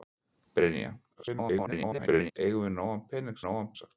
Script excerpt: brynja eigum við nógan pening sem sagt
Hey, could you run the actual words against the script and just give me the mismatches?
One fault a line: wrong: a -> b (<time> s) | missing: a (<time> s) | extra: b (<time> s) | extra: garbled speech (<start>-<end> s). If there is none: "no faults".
extra: garbled speech (1.1-2.3 s)
wrong: sem -> nógan (3.4 s)